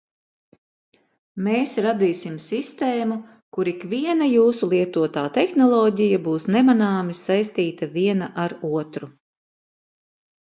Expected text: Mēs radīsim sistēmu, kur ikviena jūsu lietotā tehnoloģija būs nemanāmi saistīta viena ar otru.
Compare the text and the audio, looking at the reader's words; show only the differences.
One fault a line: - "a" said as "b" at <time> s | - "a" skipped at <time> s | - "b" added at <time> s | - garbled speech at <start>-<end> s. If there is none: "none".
none